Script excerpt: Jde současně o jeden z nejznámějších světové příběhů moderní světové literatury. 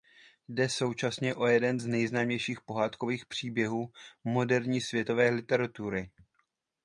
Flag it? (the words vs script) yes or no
yes